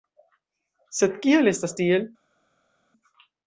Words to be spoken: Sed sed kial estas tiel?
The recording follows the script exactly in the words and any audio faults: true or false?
false